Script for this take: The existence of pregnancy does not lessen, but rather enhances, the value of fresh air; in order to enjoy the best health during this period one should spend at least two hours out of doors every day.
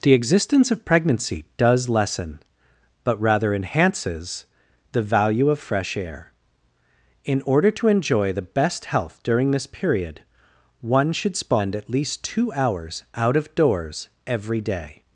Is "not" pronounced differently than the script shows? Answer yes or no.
yes